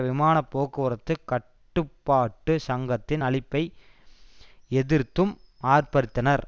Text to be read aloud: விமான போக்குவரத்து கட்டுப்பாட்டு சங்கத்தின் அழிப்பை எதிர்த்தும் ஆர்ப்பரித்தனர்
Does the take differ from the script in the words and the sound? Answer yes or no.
no